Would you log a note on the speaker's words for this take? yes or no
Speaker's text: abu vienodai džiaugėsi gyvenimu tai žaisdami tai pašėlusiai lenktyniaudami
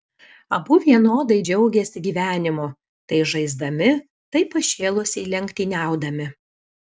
no